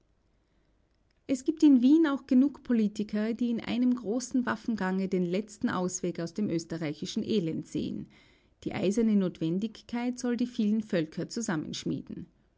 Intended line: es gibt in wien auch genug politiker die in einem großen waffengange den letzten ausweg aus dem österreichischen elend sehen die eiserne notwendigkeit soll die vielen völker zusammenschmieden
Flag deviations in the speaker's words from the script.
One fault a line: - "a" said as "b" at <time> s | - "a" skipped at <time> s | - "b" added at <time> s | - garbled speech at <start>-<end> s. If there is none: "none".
none